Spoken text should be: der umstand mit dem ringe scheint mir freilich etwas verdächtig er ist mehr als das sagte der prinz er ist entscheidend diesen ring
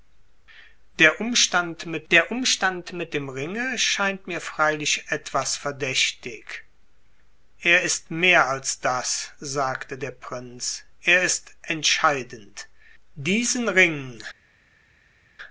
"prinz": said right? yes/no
yes